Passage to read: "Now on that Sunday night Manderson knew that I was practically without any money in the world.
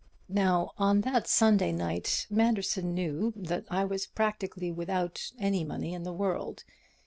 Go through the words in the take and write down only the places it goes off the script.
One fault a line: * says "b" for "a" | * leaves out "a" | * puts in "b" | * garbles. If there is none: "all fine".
all fine